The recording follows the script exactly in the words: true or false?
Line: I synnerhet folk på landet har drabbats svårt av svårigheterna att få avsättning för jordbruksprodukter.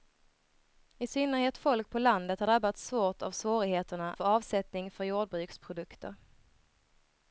false